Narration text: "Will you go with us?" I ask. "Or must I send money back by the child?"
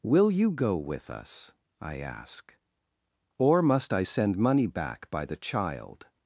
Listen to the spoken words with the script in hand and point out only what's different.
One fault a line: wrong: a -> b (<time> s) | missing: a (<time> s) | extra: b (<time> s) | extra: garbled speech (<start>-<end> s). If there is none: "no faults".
no faults